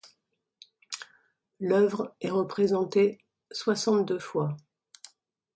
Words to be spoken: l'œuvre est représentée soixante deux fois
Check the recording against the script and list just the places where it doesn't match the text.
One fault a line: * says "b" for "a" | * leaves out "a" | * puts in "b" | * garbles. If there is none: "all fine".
all fine